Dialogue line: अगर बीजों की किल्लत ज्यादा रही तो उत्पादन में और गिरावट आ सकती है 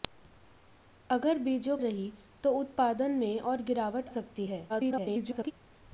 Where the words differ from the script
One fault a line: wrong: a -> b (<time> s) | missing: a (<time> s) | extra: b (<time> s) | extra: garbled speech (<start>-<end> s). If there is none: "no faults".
missing: की किल्लत ज्यादा (1.8 s)
missing: आ (4.1 s)
extra: garbled speech (4.7-5.5 s)